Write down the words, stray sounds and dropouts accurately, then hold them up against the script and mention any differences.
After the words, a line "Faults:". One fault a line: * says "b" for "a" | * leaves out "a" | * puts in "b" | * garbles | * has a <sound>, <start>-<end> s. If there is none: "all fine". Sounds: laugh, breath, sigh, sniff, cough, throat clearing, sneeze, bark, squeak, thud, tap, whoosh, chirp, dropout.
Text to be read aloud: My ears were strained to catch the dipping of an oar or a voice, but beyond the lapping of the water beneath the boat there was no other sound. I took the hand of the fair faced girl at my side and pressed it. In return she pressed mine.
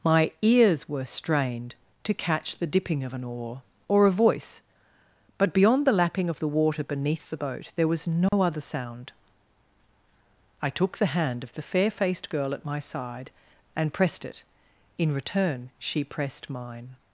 My ears were strained to catch the dipping of an oar or a voice, but beyond the lapping of the water beneath the boat there was no other sound. I took the hand of the fair faced girl at my side and pressed it. In return she pressed mine.
Faults:
* has a dropout, 8.3-8.3 s